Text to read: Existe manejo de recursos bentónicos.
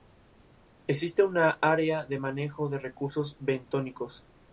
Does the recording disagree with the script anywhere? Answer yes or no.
yes